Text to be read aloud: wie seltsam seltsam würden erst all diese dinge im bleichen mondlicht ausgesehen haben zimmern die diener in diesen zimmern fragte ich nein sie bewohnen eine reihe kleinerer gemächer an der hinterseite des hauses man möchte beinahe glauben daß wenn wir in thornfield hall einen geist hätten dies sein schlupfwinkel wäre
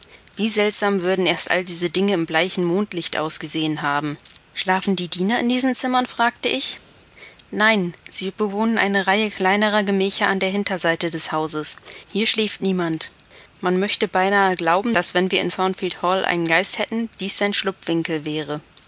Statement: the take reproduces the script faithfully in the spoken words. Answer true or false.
false